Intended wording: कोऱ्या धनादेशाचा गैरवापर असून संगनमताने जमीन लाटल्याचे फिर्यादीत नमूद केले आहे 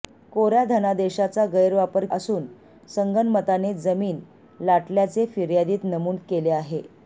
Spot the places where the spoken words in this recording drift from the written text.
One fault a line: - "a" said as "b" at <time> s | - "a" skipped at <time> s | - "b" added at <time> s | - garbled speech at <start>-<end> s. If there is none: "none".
none